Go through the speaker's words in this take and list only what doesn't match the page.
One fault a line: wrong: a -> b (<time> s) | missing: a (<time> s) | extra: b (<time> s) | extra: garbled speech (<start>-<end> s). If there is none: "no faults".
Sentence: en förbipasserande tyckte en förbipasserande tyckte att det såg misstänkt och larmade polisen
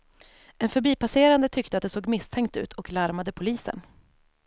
missing: en förbipasserande tyckte (1.8 s)
extra: ut (2.6 s)